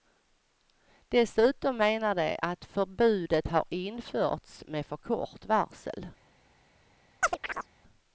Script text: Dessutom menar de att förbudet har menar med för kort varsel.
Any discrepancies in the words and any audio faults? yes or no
yes